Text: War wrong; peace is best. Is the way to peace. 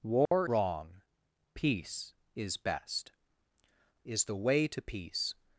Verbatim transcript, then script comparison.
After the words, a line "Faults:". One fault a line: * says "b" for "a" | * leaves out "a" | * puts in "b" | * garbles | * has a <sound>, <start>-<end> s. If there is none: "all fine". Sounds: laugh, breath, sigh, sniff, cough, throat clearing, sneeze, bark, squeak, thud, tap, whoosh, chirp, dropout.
War wrong; peace is best. Is the way to peace.
Faults:
* has a dropout, 0.3-0.3 s